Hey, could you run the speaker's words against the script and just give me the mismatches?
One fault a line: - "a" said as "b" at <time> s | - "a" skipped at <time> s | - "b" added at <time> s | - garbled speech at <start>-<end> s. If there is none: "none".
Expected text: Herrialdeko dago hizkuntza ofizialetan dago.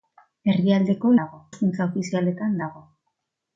none